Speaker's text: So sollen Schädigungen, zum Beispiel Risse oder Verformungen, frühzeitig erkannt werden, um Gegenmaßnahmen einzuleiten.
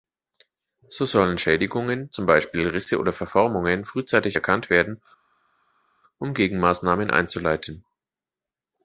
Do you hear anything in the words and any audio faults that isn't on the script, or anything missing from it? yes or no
no